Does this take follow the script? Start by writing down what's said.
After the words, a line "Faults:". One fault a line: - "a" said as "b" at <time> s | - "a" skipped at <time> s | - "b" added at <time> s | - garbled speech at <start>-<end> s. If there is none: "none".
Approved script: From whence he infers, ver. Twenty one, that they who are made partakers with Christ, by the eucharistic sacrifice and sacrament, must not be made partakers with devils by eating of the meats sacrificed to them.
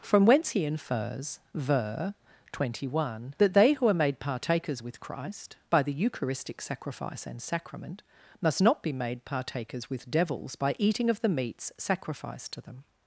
From whence he infers, ver. Twenty one, that they who are made partakers with Christ, by the eucharistic sacrifice and sacrament, must not be made partakers with devils by eating of the meats sacrificed to them.
Faults:
none